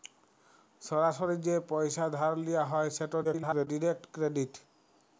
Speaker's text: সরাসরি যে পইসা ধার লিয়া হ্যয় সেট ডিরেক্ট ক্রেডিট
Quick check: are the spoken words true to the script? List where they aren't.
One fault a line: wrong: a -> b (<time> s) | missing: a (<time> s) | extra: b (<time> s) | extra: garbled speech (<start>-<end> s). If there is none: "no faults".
extra: garbled speech (3.2-3.7 s)